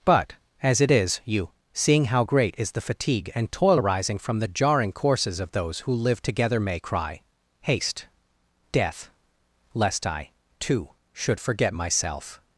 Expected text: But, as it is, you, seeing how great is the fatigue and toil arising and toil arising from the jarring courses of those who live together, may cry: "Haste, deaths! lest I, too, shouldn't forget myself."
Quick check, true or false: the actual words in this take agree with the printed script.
false